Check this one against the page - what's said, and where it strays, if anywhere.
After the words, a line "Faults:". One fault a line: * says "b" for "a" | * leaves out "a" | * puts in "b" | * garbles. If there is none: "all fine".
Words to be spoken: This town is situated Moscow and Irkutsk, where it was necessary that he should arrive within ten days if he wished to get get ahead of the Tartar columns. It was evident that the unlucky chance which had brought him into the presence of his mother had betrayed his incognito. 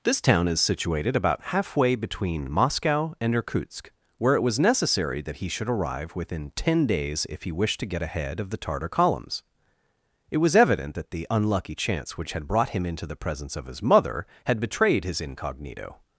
This town is situated about halfway between Moscow and Irkutsk, where it was necessary that he should arrive within ten days if he wished to get ahead of the Tartar columns. It was evident that the unlucky chance which had brought him into the presence of his mother had betrayed his incognito.
Faults:
* puts in "about halfway between"
* leaves out "get"